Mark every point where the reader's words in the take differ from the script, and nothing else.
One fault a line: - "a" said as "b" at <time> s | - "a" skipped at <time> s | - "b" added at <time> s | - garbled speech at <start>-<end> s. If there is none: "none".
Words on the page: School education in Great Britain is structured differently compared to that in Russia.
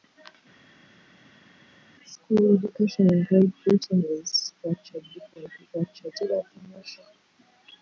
- "compared" said as "structured" at 5.6 s